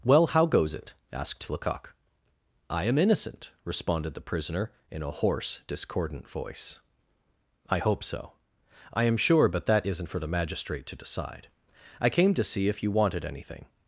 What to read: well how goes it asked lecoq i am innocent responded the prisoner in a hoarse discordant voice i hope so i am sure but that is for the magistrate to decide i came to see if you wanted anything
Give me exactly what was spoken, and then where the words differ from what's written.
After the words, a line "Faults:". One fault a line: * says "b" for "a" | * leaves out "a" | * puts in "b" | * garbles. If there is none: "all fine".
well how goes it asked lecoq i am innocent responded the prisoner in a hoarse discordant voice i hope so i am sure but that isn't for the magistrate to decide i came to see if you wanted anything
Faults:
* says "isn't" for "is"